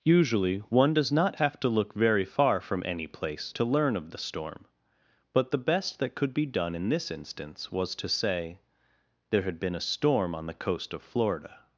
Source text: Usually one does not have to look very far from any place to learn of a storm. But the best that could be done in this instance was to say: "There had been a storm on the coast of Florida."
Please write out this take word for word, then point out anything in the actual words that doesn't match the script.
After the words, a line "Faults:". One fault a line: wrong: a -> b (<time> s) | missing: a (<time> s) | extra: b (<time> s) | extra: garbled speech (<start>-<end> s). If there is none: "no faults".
Usually one does not have to look very far from any place to learn of the storm. But the best that could be done in this instance was to say: "There had been a storm on the coast of Florida."
Faults:
wrong: a -> the (4.1 s)